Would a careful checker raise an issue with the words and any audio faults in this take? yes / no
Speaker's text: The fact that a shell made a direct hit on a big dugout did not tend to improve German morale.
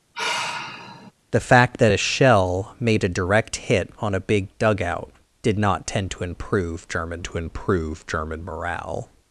yes